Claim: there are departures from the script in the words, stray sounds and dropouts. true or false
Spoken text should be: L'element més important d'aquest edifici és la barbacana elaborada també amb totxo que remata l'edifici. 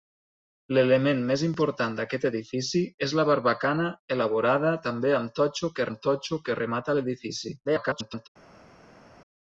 true